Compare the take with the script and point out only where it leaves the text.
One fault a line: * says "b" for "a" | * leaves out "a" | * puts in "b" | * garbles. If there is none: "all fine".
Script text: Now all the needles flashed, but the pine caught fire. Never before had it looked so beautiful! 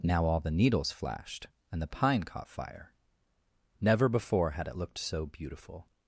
* says "and" for "but"